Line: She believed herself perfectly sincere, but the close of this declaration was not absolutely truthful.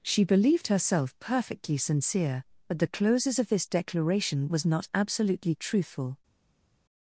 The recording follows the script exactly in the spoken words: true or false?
false